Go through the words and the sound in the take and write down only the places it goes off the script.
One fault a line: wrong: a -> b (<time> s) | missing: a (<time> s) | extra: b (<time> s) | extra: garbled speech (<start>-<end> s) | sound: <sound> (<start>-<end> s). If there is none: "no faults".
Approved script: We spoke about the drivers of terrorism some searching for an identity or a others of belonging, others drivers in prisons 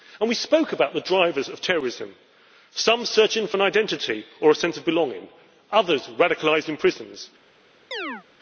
wrong: others -> sense (4.5 s)
wrong: drivers -> radicalised (6.2 s)
sound: chirp (7.9-8.2 s)